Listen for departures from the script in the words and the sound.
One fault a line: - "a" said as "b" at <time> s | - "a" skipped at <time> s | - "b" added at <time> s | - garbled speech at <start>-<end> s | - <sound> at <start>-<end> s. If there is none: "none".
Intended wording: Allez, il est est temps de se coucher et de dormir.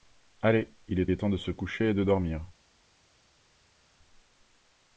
none